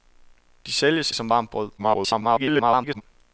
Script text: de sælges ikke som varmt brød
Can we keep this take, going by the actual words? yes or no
no